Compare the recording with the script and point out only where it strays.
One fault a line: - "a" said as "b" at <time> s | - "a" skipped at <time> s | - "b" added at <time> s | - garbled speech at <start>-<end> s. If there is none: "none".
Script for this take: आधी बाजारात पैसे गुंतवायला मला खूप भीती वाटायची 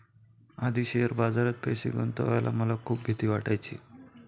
- "शेअर" added at 0.8 s